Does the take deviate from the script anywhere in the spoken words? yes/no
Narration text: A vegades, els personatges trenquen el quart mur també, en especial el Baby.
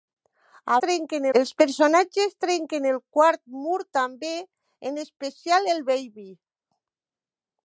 yes